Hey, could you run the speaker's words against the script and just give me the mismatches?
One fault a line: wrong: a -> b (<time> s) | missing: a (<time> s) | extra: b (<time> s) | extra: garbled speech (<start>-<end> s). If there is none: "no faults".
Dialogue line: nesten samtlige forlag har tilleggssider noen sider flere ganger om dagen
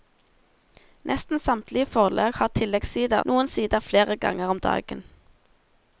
no faults